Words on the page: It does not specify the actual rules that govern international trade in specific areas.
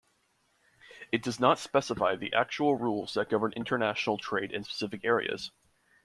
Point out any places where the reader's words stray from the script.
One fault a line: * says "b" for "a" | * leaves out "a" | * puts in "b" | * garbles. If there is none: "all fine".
all fine